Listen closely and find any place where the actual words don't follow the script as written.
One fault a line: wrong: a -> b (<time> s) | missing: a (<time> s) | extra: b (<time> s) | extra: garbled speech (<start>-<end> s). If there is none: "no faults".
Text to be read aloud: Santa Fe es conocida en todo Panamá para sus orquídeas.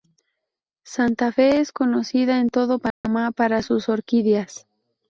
no faults